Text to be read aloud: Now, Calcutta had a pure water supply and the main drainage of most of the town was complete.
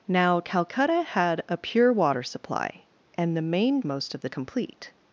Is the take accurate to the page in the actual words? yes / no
no